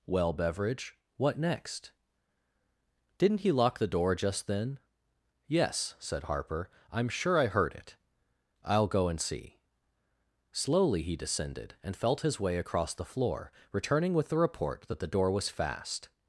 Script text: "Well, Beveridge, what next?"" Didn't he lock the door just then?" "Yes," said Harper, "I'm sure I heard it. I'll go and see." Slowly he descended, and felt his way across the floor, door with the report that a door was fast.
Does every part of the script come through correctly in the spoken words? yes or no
no